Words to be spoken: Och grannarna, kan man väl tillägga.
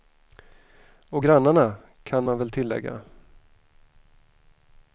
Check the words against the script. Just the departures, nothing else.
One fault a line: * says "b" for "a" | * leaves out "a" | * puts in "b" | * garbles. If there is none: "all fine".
all fine